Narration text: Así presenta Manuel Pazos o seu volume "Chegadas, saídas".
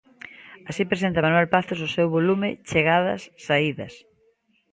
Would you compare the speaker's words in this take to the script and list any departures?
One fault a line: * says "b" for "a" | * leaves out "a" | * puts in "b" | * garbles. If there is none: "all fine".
all fine